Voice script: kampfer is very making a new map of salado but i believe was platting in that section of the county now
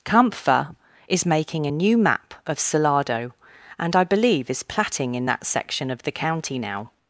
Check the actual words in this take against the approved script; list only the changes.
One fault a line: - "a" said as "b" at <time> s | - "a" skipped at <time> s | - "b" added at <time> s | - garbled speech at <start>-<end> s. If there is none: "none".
- "very" skipped at 1.3 s
- "but" said as "and" at 3.8 s
- "was" said as "is" at 4.5 s